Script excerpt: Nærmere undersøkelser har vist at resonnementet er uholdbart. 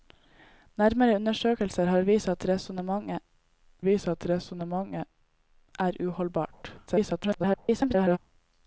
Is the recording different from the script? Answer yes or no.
yes